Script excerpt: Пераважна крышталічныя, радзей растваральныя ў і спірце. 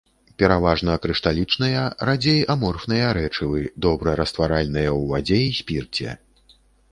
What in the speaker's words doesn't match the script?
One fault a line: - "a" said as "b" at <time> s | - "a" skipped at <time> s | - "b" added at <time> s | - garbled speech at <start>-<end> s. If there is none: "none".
- "аморфныя рэчывы добра" added at 2.5 s
- "вадзе" added at 5.1 s